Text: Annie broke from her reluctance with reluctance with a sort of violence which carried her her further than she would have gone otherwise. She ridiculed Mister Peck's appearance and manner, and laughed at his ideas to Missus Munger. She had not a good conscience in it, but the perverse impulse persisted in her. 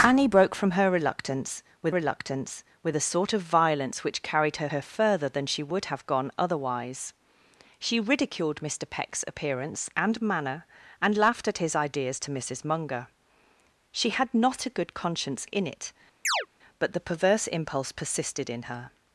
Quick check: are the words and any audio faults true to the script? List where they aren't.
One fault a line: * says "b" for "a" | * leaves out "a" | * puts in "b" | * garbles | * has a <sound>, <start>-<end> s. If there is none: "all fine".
* has a chirp, 16.2-16.5 s